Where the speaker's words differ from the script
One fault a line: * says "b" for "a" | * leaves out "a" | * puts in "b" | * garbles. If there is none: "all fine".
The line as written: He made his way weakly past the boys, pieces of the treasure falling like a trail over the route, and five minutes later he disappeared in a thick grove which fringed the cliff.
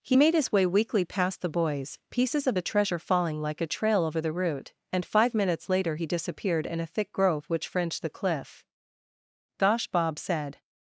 * puts in "Gosh Bob said"